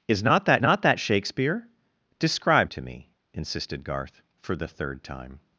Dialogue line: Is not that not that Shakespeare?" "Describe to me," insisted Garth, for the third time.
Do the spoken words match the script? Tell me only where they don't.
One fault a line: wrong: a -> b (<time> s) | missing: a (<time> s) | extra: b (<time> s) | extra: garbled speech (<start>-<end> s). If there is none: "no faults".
no faults